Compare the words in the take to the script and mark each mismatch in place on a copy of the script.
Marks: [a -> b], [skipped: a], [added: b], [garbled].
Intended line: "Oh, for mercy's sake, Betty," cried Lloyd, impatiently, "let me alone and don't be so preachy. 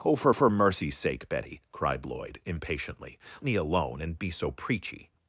"Oh, for [added: for] mercy's sake, Betty," cried Lloyd, impatiently, [skipped: "let] me alone and [skipped: don't] be so preachy.